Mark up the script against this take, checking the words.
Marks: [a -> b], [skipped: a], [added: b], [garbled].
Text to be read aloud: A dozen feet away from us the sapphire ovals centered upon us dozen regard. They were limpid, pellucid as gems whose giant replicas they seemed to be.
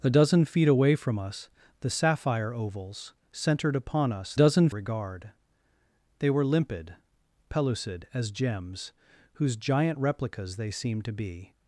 A dozen feet away from us the sapphire ovals centered upon us dozen regard. They were limpid, pellucid as gems whose giant replicas they seemed to be.